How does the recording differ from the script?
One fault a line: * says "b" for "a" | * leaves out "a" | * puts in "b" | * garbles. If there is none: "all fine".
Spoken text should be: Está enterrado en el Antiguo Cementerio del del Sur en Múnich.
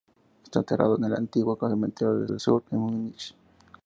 all fine